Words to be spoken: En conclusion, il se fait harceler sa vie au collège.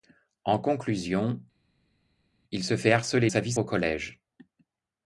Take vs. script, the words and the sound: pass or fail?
pass